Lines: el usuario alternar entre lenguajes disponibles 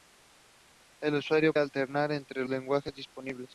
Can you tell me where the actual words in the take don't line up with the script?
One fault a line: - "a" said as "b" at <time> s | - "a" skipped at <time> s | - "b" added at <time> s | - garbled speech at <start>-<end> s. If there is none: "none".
none